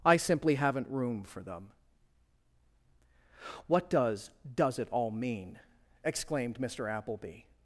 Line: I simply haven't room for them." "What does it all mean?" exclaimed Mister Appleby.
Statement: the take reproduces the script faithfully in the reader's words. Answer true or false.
false